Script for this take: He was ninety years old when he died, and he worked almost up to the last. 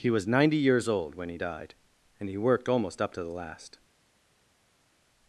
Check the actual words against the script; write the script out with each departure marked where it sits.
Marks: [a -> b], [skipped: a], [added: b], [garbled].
He was ninety years old when he died, and he worked almost up to the last.